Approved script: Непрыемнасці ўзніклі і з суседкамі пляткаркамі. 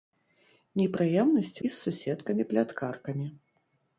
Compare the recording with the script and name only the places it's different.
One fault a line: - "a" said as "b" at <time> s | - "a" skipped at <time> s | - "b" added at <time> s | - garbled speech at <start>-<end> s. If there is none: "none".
- "ўзніклі" skipped at 1.6 s